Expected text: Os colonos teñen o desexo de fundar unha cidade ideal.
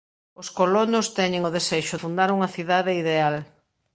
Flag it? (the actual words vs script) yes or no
yes